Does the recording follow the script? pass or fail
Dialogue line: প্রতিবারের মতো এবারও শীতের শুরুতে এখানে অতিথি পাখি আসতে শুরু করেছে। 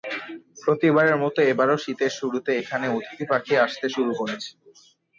pass